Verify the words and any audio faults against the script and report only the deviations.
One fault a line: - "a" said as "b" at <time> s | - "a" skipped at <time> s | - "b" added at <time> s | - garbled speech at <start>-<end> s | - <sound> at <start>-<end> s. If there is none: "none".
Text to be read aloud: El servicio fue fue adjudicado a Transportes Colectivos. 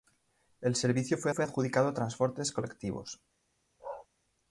- bark at 3.8-4.1 s